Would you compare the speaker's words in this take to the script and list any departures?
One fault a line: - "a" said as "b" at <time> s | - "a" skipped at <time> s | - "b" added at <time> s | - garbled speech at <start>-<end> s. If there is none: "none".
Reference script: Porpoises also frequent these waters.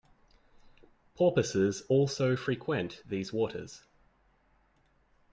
none